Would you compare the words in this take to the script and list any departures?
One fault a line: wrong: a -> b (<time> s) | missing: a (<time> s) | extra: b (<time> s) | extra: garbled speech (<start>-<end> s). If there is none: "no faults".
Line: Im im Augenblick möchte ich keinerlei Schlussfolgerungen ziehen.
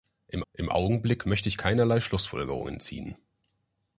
no faults